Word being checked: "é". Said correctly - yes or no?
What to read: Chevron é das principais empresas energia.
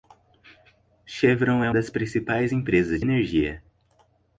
yes